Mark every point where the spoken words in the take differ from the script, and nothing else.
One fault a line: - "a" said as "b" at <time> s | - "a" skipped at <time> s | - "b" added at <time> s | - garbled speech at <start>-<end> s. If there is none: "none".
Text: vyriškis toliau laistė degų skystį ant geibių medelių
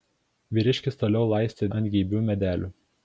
- "degų skystį" skipped at 1.7 s